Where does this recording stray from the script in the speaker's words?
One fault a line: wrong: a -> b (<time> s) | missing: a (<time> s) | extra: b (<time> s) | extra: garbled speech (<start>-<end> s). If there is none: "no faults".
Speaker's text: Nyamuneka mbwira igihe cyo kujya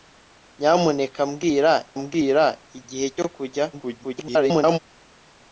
extra: mbwira (2.0 s)
extra: garbled speech (3.7-4.8 s)